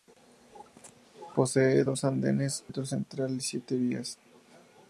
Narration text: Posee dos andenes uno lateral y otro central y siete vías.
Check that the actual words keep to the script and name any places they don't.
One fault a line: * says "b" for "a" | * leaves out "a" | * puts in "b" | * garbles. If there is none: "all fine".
* leaves out "uno lateral y"